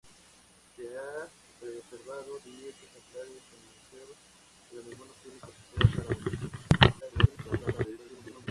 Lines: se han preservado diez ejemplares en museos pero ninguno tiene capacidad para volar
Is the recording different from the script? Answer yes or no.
yes